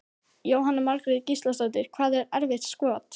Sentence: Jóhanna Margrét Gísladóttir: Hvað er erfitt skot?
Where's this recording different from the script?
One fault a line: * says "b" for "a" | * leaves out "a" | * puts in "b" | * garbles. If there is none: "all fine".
all fine